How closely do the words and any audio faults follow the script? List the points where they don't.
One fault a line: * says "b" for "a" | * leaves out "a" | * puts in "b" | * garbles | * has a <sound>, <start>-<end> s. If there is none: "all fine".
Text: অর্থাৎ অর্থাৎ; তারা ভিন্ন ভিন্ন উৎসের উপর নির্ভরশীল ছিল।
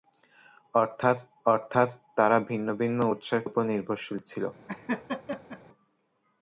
* has a laugh, 4.7-5.6 s